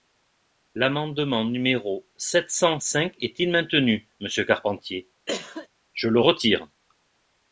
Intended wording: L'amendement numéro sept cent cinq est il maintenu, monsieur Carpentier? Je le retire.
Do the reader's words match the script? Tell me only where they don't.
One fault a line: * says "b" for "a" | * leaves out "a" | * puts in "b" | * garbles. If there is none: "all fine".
all fine